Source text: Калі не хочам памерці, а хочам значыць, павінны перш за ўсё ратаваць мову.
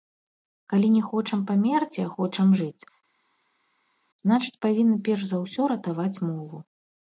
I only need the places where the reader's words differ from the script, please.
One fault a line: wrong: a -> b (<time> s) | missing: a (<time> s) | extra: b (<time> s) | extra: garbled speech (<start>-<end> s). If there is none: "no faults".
extra: жыць (2.6 s)